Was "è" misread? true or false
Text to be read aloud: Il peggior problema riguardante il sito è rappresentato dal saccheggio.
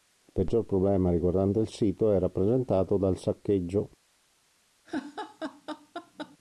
false